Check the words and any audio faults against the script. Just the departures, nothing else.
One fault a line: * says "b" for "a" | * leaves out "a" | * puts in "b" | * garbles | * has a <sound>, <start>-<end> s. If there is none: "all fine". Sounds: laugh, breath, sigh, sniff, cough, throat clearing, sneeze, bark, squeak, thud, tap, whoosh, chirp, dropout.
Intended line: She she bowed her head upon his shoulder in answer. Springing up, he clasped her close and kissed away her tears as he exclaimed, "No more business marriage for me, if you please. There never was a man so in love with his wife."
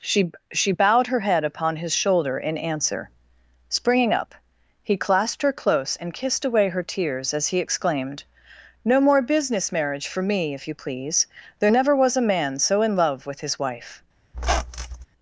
* has a squeak, 14.3-15.1 s